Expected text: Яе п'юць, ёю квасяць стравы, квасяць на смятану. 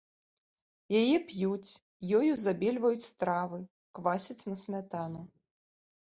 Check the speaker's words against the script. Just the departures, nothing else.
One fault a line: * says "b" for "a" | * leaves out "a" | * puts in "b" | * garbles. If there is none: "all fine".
* says "забельваюць" for "квасяць"